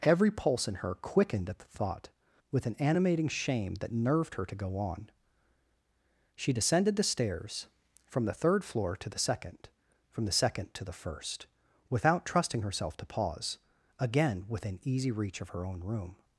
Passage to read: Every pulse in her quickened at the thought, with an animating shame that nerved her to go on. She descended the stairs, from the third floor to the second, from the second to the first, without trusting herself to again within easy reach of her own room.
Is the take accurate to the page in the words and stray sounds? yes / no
no